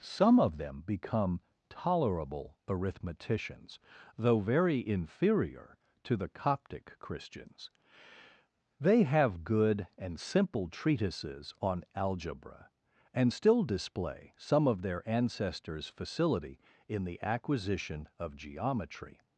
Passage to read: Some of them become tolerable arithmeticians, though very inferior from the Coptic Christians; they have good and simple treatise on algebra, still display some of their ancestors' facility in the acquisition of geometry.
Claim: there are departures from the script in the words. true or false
true